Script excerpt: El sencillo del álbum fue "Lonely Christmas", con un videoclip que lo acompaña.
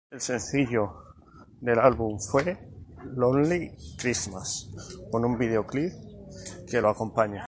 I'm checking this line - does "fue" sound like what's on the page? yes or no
yes